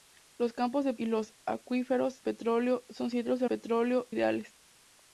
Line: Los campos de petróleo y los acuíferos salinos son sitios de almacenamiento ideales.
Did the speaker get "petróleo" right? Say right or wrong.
wrong